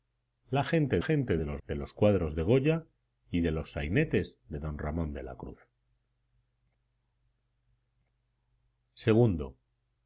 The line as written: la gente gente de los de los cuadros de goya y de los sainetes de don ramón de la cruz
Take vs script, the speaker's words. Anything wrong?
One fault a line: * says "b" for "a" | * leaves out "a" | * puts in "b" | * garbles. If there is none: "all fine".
all fine